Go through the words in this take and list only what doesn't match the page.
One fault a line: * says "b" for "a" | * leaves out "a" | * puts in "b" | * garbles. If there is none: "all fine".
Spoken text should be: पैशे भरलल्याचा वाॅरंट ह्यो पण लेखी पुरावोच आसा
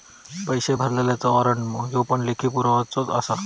all fine